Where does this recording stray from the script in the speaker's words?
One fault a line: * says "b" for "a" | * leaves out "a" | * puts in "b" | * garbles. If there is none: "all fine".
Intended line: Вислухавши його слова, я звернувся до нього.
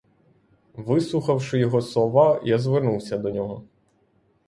all fine